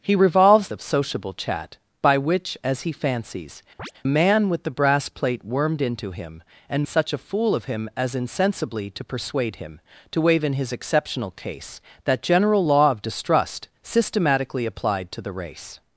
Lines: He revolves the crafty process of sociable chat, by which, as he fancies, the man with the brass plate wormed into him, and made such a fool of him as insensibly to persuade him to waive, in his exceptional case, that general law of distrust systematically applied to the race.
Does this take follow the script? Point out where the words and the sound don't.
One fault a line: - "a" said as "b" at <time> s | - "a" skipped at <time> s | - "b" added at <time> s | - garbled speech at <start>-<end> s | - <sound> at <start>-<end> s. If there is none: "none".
- "the crafty process" skipped at 0.7 s
- "the" skipped at 3.6 s
- chirp at 3.8-3.9 s
- "made" skipped at 6.9 s